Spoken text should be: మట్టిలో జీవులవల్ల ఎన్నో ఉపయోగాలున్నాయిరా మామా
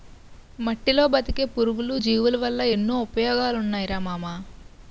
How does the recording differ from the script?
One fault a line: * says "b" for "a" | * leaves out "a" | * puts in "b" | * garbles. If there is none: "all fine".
* puts in "బతికే పురుగులు"